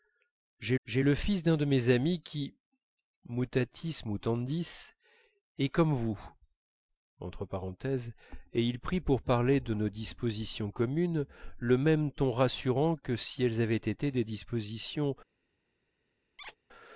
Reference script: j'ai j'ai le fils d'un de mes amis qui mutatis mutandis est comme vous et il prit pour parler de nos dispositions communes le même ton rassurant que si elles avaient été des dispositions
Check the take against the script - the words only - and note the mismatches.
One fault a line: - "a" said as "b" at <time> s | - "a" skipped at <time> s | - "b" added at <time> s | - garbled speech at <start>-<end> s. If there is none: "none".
none